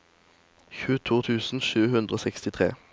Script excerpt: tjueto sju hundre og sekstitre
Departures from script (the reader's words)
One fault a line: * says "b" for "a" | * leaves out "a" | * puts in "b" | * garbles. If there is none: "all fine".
* puts in "tusen"